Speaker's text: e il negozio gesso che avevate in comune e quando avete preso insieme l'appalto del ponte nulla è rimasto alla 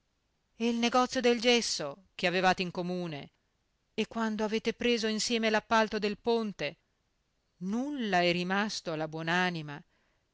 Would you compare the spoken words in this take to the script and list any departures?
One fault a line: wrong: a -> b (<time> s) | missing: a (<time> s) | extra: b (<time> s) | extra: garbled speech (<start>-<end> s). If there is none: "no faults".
extra: del (1.2 s)